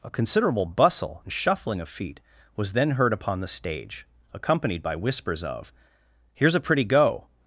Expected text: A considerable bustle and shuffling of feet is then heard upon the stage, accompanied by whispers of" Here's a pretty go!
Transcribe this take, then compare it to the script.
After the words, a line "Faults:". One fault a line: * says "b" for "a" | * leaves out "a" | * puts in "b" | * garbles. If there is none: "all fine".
A considerable bustle and shuffling of feet was then heard upon the stage, accompanied by whispers of" Here's a pretty go!
Faults:
* says "was" for "is"